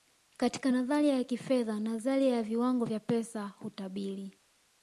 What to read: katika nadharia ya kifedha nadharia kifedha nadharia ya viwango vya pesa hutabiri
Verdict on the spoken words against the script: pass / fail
fail